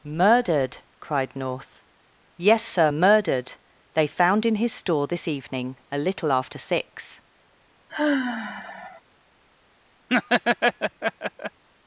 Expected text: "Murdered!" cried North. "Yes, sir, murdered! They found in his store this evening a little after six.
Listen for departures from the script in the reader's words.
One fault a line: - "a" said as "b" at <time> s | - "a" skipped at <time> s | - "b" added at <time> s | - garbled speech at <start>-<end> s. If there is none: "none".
none